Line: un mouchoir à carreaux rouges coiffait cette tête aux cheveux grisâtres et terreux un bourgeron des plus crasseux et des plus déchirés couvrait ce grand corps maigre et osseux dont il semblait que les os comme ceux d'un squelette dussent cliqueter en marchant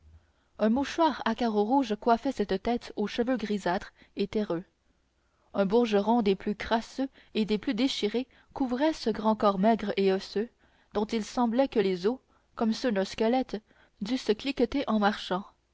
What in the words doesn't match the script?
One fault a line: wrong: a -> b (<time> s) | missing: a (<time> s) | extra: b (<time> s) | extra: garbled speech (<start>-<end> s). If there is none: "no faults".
no faults